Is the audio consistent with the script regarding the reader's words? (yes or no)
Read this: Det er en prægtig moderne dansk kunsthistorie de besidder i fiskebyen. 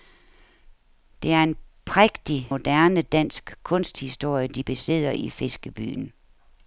yes